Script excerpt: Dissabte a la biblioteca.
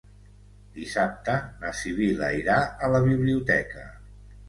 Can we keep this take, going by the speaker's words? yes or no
no